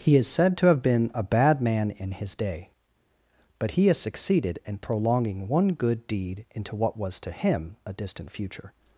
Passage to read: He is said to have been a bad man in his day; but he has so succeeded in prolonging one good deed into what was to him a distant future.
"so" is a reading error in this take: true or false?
true